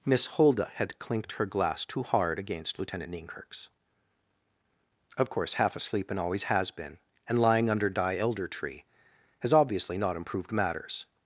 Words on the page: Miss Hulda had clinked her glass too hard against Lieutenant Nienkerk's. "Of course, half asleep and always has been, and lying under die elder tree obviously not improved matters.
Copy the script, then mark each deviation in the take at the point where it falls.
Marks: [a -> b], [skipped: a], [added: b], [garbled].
Miss Hulda had clinked her glass too hard against Lieutenant Nienkerk's. "Of course, half asleep and always has been, and lying under die elder tree [added: has] obviously not improved matters.